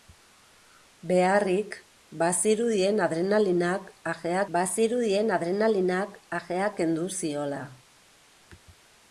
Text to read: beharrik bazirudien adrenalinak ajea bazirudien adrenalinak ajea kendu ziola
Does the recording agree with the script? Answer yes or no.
yes